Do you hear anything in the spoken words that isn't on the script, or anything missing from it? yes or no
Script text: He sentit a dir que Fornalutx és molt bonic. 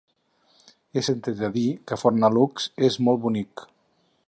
no